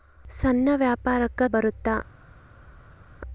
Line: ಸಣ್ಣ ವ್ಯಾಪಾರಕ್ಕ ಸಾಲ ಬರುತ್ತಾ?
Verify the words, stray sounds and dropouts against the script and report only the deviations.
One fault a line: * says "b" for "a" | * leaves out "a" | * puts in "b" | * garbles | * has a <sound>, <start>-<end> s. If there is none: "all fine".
* leaves out "ಸಾಲ"